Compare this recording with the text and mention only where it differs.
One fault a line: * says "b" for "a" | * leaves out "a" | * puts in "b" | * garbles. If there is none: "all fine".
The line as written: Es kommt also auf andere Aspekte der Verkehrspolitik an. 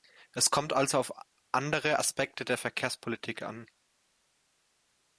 all fine